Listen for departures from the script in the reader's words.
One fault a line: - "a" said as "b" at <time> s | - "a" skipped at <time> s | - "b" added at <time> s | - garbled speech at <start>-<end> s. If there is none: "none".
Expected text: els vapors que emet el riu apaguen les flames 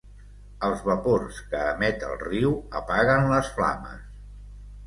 none